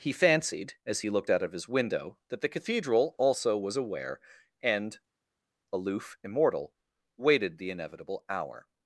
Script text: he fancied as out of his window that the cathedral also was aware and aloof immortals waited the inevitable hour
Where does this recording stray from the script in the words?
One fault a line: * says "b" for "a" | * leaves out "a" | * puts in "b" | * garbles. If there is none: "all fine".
* puts in "he looked"
* says "immortal" for "immortals"